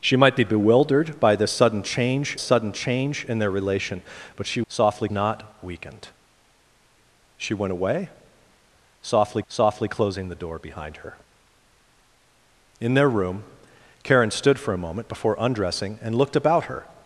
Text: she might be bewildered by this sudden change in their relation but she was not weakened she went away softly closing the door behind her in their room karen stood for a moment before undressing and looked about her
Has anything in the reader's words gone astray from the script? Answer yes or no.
yes